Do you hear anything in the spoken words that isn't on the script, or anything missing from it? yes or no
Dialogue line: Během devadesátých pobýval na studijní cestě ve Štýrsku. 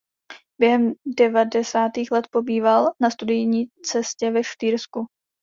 yes